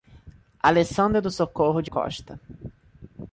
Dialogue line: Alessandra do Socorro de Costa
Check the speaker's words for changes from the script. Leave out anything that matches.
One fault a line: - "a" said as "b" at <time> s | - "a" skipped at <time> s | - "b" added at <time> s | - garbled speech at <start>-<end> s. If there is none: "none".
none